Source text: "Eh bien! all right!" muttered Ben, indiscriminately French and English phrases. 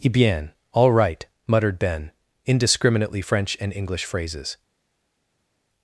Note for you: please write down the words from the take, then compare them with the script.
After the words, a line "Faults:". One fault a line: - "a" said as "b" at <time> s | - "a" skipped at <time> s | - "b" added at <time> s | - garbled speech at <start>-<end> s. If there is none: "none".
"Eh bien! all right!" muttered Ben, indiscriminately French and English phrases.
Faults:
none